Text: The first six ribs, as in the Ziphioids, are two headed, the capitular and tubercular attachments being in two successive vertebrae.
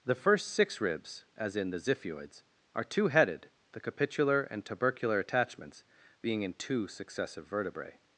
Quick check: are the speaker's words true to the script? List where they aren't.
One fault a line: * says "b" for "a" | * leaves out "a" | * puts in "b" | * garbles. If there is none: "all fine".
all fine